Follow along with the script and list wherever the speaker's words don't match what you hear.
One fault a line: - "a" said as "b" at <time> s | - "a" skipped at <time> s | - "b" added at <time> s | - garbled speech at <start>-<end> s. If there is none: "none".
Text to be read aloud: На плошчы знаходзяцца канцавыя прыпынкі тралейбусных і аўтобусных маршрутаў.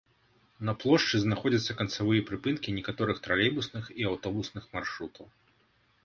- "некаторых" added at 2.8 s